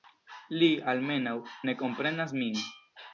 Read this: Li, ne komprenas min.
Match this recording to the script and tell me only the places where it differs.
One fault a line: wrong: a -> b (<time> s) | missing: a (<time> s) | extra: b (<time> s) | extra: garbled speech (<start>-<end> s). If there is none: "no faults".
extra: almenaŭ (0.9 s)